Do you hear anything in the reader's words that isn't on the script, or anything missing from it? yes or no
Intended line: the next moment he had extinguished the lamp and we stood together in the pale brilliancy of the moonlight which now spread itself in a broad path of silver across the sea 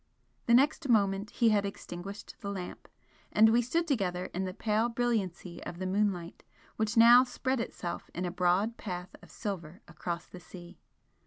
no